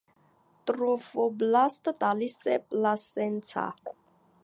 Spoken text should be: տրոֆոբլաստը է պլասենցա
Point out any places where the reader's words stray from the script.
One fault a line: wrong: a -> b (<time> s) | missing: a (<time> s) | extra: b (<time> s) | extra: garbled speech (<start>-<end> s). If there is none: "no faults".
extra: տալիս (2.1 s)